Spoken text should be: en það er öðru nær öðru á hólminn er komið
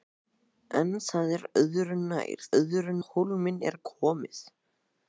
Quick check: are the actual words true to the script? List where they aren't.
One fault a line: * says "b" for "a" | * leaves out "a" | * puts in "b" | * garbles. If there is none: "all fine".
all fine